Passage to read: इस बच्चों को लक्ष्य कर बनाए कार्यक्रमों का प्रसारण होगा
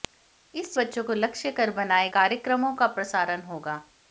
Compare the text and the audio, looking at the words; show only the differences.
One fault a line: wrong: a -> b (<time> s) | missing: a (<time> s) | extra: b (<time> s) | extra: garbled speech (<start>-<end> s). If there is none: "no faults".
no faults